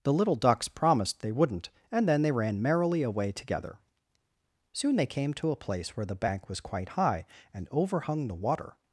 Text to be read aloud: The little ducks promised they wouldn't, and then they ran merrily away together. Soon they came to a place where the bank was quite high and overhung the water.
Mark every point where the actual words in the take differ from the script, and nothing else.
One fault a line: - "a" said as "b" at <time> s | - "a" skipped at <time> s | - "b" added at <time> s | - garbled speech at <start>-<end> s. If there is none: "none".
none